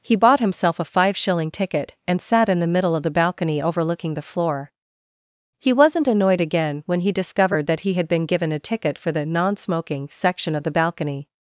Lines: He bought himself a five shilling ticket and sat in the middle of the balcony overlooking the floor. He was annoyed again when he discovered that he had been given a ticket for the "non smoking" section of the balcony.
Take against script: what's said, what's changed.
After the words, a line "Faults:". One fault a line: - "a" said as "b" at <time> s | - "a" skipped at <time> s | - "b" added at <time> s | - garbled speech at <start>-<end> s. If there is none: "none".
He bought himself a five shilling ticket and sat in the middle of the balcony overlooking the floor. He wasn't annoyed again when he discovered that he had been given a ticket for the "non smoking" section of the balcony.
Faults:
- "was" said as "wasn't" at 5.7 s